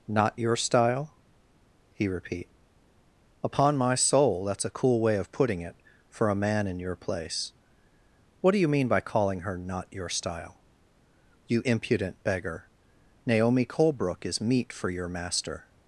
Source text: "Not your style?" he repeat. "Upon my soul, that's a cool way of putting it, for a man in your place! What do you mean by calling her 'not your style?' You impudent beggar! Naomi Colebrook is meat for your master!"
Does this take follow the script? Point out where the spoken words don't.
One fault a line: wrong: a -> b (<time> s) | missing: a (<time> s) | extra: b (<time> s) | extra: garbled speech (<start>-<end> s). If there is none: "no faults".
no faults